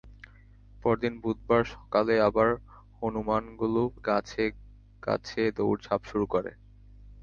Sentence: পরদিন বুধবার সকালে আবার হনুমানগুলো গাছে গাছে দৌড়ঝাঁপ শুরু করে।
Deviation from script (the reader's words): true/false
false